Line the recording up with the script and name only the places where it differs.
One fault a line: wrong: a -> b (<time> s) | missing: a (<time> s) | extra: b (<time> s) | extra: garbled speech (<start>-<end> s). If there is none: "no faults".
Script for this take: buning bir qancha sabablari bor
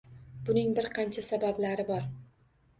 no faults